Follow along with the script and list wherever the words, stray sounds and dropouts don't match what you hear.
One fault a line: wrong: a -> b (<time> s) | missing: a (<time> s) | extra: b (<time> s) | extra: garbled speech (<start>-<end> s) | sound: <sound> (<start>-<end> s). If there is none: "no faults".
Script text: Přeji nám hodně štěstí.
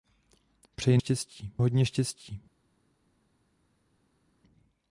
wrong: nám -> štěstí (1.0 s)